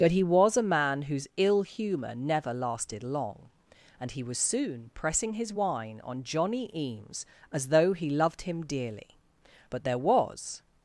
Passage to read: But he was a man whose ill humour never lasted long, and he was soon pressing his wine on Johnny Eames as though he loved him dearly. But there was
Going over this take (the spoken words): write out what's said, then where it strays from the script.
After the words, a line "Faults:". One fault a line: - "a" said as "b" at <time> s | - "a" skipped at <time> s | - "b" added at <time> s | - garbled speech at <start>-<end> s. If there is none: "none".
But he was a man whose ill humour never lasted long, and he was soon pressing his wine on Johnny Eames as though he loved him dearly. But there was
Faults:
none